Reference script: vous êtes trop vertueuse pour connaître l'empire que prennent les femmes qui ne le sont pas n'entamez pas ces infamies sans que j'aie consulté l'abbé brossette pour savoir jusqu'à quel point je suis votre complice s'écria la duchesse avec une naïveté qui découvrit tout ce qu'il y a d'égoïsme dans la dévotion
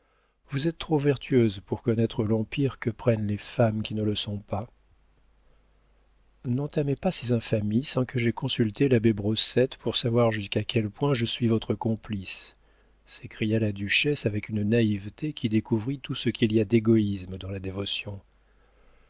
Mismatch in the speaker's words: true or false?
false